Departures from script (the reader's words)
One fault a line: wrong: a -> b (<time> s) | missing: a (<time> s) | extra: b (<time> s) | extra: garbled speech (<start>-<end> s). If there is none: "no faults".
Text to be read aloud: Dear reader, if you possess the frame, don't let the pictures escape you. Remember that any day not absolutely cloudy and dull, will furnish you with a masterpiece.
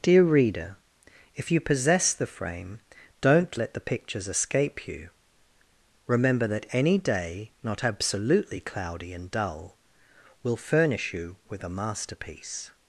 no faults